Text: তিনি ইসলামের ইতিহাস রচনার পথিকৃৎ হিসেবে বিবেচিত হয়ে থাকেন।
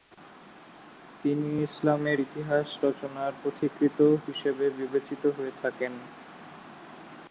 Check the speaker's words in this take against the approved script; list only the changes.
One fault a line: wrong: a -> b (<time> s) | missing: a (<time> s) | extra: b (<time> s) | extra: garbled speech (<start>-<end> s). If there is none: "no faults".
no faults